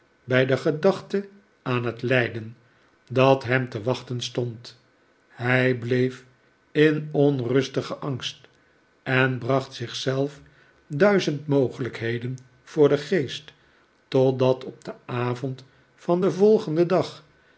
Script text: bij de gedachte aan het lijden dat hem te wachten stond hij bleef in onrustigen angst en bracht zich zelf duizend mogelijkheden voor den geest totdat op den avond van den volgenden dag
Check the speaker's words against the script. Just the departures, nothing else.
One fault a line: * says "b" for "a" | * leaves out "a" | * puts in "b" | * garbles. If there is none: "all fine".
all fine